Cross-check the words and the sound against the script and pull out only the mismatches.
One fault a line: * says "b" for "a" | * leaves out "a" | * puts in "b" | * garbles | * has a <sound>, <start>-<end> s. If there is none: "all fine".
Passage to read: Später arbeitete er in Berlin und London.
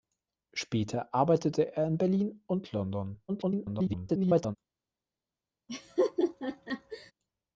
* garbles
* has a laugh, 5.7-7.1 s